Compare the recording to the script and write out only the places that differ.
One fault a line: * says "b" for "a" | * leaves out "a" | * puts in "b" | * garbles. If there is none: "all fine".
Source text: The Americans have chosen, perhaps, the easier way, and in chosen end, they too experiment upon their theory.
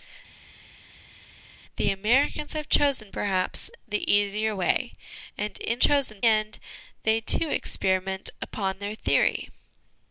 all fine